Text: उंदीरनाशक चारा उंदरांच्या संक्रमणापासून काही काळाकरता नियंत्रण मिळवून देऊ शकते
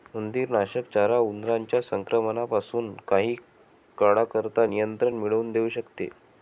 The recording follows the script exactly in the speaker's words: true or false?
true